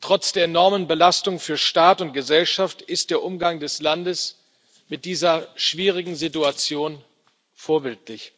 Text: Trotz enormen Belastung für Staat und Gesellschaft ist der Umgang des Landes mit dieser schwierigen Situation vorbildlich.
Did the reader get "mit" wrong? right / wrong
right